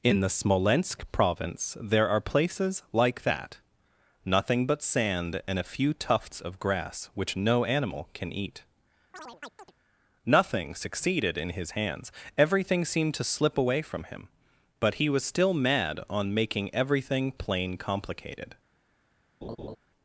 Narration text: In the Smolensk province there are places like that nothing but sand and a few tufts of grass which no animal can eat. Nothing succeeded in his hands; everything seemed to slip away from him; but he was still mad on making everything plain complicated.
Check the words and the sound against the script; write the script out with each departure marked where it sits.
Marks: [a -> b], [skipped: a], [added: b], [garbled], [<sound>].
In the Smolensk province there are places like that nothing but sand and a few tufts of grass which no animal can eat. [chirp] Nothing succeeded in his hands; everything seemed to slip away from him; but he was still mad on making everything plain complicated. [laugh]